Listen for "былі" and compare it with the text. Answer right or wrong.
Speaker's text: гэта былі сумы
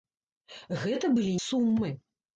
right